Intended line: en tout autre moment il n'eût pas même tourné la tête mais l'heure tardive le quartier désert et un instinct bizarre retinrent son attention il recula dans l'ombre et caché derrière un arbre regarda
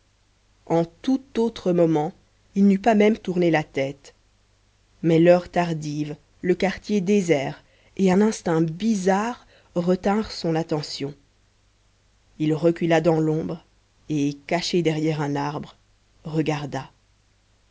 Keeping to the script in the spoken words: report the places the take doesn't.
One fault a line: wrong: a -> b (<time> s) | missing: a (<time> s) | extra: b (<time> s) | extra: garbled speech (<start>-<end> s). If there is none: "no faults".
no faults